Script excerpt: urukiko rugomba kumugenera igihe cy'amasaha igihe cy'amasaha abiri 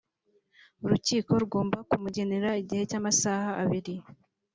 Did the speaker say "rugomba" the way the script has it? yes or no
yes